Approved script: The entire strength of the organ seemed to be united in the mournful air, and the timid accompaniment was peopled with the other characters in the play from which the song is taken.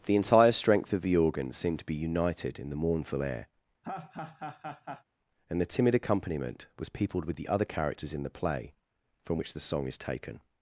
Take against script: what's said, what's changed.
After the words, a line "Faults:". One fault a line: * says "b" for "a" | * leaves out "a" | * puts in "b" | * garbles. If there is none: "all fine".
The entire strength of the organ seemed to be united in the mournful air, and the timid accompaniment was peopled with the other characters in the play from which the song is taken.
Faults:
all fine